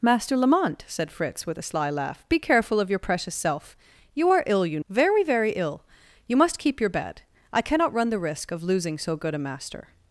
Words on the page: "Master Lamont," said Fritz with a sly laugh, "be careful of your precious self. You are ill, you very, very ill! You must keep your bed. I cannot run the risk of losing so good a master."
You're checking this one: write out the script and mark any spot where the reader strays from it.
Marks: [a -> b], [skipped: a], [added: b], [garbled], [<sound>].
"Master Lamont," said Fritz with a sly laugh, "be careful of your precious self. You are ill, you very, very ill! You must keep your bed. I cannot run the risk of losing so good a master."